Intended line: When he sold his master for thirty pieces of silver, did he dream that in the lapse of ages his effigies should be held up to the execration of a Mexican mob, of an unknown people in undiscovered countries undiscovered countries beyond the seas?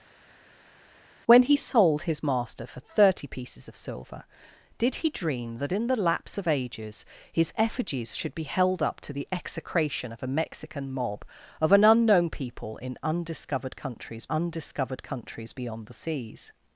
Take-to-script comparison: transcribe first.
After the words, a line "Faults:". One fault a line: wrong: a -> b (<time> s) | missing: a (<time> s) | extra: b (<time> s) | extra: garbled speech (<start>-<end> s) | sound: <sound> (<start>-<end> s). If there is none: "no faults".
When he sold his master for thirty pieces of silver, did he dream that in the lapse of ages his effigies should be held up to the execration of a Mexican mob, of an unknown people in undiscovered countries undiscovered countries beyond the seas?
Faults:
no faults